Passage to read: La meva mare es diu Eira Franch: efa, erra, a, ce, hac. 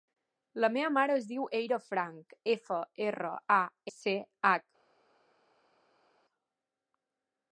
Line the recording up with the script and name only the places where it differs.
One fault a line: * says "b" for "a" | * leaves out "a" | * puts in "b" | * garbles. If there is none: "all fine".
all fine